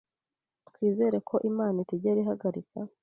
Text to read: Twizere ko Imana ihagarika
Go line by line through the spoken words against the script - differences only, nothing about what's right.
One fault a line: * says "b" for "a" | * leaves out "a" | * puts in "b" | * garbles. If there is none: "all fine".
* puts in "itigera"